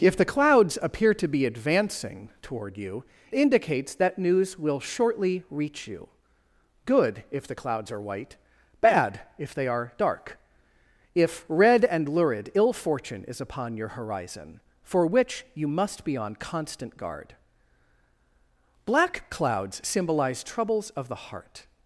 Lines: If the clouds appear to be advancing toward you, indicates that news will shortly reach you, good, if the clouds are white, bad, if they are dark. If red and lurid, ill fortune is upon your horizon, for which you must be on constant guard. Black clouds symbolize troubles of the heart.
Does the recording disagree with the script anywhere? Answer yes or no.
no